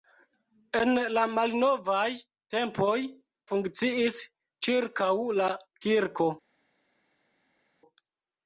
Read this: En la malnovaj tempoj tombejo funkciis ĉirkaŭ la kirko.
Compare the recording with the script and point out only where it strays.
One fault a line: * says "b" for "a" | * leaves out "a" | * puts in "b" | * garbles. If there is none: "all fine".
* leaves out "tombejo"